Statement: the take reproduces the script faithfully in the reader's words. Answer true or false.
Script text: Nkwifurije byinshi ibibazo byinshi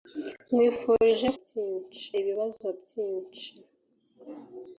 true